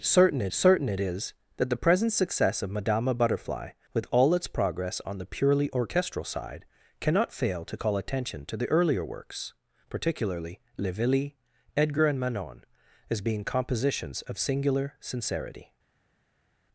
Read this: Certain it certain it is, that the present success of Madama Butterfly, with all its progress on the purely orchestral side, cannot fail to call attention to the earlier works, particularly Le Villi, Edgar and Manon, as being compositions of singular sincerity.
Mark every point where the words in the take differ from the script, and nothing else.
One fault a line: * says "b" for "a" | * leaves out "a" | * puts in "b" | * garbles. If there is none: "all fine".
all fine